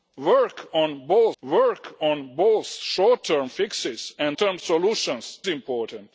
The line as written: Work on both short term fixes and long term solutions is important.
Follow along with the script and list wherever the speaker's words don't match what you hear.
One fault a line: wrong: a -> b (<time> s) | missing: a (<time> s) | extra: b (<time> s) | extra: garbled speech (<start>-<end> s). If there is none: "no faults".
extra: work on both (1.4 s)
missing: long (4.4 s)
missing: is (5.4 s)